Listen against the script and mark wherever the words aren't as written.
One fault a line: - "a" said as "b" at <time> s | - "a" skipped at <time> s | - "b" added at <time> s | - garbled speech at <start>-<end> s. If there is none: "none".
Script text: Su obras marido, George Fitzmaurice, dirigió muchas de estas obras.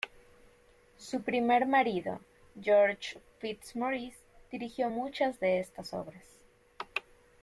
- "obras" said as "primer" at 1.2 s